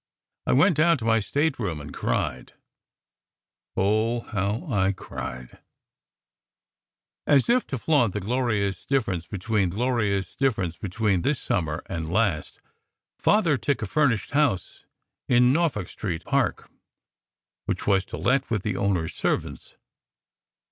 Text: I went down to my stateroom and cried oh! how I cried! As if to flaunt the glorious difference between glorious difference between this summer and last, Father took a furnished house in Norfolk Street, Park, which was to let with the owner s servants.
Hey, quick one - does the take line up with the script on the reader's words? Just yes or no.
yes